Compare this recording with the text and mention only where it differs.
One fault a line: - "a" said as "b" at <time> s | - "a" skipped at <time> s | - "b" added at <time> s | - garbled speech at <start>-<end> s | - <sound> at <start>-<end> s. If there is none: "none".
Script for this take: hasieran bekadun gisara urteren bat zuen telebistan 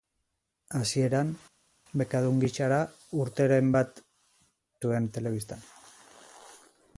none